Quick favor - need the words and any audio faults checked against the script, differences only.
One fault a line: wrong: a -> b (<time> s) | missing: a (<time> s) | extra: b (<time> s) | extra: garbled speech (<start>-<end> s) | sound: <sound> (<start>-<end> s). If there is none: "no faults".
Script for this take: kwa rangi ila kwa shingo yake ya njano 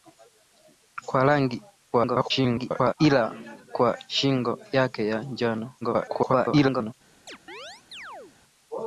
extra: garbled speech (1.9-2.9 s)
extra: garbled speech (5.8-6.9 s)
sound: chirp (7.3-8.4 s)